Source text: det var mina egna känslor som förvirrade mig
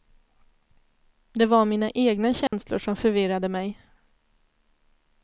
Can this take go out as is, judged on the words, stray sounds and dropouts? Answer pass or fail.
fail